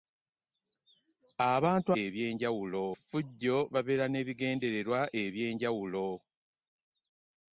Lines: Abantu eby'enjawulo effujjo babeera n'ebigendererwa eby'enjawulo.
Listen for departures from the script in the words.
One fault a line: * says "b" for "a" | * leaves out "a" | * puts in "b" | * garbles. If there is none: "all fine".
all fine